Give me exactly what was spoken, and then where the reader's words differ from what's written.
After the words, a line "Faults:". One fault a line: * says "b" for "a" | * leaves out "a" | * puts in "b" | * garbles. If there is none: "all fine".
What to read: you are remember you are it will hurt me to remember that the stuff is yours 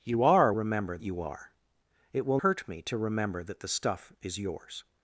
you are remember you are it will hurt me to remember that the stuff is yours
Faults:
all fine